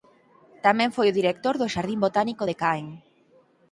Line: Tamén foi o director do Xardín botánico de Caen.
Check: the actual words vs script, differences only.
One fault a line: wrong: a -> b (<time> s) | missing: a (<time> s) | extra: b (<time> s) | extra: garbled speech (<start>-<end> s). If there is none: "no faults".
no faults